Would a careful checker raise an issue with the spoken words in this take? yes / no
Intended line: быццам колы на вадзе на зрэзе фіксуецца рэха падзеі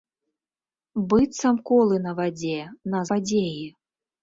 yes